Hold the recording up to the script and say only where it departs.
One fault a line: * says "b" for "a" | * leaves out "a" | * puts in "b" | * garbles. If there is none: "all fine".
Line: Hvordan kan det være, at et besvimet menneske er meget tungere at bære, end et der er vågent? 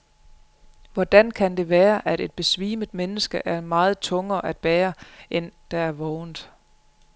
* leaves out "et"